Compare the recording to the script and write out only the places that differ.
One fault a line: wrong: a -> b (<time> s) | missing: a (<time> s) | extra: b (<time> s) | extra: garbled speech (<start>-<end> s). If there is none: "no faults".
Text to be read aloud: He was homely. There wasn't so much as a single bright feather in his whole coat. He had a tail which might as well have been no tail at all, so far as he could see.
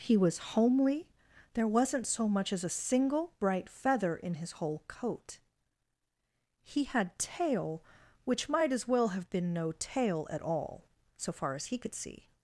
missing: a (7.2 s)